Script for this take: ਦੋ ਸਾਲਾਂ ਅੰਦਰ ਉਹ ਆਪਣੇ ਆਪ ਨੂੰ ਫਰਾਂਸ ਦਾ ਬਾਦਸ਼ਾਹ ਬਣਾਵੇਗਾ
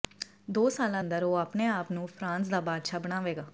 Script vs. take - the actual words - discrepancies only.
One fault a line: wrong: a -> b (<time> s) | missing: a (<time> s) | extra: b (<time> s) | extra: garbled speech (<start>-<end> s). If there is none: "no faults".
no faults